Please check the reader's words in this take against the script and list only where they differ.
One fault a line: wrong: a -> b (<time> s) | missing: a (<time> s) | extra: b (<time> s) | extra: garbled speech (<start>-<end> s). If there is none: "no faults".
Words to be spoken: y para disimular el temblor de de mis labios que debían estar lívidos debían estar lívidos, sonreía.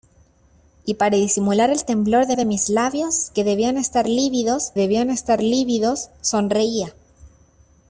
no faults